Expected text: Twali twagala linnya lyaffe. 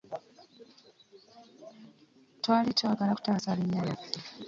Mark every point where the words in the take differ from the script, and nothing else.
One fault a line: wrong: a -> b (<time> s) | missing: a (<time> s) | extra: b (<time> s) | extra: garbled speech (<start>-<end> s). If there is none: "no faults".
extra: kutaasa (3.1 s)